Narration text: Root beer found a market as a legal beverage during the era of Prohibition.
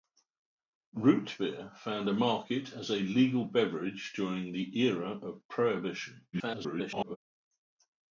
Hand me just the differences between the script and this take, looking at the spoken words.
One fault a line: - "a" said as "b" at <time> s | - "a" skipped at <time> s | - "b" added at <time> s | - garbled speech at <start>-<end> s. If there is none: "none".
- garbled speech at 6.3-7.2 s